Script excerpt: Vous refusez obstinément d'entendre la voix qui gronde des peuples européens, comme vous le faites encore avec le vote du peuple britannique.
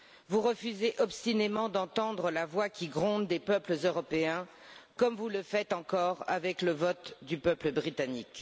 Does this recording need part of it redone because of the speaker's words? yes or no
no